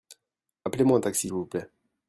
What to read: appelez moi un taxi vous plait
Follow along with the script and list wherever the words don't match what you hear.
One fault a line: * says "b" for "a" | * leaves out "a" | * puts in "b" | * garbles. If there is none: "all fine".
all fine